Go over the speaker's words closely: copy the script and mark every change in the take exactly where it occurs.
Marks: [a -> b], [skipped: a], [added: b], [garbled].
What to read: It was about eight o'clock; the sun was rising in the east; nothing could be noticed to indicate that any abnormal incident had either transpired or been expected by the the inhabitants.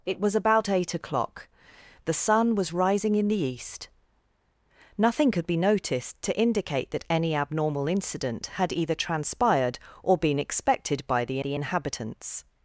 It was about eight o'clock; the sun was rising in the east; nothing could be noticed to indicate that any abnormal incident had either transpired or been expected by the the inhabitants.